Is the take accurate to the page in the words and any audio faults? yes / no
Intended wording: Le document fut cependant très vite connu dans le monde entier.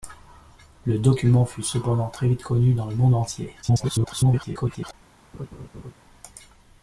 no